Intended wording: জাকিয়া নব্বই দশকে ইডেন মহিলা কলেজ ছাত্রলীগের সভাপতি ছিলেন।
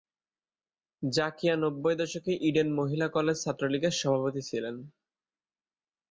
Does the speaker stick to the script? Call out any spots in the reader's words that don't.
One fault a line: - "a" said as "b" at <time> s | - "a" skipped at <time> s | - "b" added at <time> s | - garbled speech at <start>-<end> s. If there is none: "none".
none